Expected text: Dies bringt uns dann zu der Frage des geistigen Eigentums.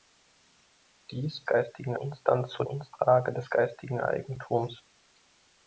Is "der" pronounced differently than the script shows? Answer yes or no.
yes